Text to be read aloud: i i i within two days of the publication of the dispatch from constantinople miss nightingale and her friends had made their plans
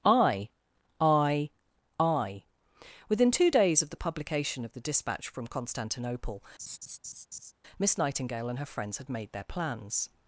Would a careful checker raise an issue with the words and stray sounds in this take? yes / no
yes